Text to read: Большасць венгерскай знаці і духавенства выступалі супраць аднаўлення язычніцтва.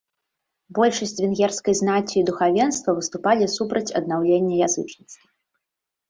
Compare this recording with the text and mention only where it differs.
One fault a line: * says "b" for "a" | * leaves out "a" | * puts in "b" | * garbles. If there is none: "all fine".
all fine